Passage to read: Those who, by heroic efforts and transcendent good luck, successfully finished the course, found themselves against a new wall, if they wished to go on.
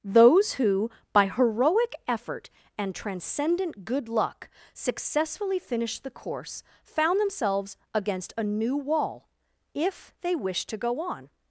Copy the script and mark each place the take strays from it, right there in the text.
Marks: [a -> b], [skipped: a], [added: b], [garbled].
Those who, by heroic [efforts -> effort] and transcendent good luck, successfully finished the course, found themselves against a new wall, if they wished to go on.